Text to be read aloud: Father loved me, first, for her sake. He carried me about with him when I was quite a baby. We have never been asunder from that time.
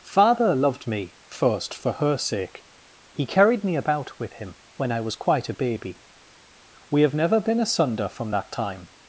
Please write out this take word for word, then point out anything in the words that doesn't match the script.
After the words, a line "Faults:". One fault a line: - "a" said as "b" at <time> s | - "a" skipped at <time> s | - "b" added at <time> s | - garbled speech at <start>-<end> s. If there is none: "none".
Father loved me, first, for her sake. He carried me about with him when I was quite a baby. We have never been asunder from that time.
Faults:
none